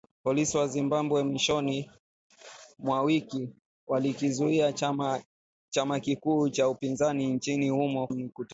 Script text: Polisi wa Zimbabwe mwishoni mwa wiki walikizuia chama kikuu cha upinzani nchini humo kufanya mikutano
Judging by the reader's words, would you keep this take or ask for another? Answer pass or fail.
fail